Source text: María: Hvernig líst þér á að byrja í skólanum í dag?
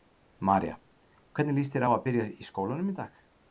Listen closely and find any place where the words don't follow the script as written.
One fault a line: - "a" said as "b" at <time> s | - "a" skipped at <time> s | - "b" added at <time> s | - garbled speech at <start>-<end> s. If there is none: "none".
none